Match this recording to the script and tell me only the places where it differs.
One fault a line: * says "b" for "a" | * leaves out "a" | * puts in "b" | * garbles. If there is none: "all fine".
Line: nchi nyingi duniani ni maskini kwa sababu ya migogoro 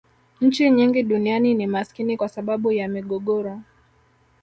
all fine